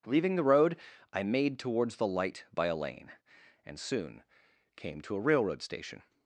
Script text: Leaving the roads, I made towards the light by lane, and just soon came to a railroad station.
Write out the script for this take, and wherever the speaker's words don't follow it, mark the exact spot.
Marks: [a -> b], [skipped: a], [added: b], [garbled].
Leaving the [roads, -> road] I made towards the light by [added: a] lane, and [skipped: just] soon came to a railroad station.